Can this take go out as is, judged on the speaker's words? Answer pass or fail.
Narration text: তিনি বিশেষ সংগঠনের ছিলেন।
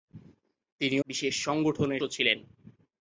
pass